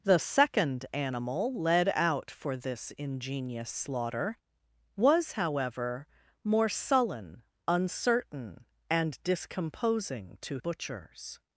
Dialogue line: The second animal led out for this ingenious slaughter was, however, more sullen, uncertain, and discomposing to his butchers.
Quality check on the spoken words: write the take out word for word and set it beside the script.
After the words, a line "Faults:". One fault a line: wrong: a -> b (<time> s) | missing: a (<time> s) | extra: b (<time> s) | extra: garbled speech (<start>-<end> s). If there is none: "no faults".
The second animal led out for this ingenious slaughter was, however, more sullen, uncertain, and discomposing to butchers.
Faults:
missing: his (10.6 s)